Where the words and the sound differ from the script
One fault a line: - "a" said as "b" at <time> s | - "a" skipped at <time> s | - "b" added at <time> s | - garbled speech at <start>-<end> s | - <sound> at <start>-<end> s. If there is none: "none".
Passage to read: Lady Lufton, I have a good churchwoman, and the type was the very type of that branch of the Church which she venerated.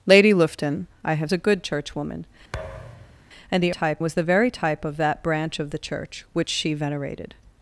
- thud at 2.5-3.2 s